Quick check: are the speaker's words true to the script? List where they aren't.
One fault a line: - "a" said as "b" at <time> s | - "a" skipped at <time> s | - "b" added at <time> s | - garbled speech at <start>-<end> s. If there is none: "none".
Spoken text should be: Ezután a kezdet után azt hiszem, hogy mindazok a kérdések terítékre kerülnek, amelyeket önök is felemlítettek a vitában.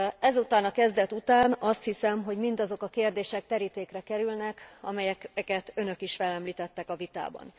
none